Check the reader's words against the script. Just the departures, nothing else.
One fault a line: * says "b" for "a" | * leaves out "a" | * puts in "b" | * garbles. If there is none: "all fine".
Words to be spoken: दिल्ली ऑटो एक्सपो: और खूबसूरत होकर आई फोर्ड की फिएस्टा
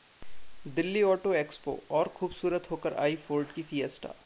all fine